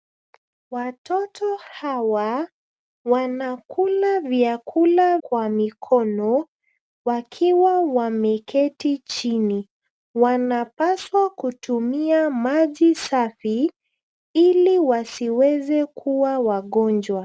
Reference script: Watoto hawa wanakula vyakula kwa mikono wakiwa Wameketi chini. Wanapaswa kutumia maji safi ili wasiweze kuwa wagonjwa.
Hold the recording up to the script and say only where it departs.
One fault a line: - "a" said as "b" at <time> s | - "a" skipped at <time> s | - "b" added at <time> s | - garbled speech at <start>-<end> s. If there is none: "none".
none